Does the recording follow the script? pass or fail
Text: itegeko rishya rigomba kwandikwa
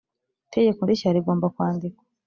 pass